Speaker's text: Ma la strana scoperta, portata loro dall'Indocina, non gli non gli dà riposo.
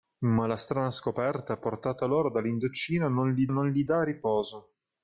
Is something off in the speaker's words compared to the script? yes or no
no